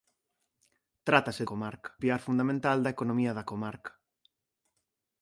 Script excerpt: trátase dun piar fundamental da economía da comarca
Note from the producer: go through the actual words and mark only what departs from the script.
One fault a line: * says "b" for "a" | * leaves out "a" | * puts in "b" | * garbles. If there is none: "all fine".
* says "comarca" for "dun"